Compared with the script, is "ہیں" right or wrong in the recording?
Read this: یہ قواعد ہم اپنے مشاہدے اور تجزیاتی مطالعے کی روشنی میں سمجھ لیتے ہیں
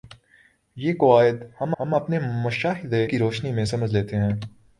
right